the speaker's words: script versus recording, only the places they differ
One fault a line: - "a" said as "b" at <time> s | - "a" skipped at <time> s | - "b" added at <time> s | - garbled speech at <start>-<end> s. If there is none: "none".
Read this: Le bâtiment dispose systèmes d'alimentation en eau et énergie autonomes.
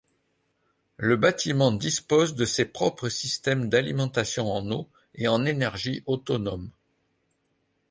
- "de ses propres" added at 2.3 s
- "en" added at 5.3 s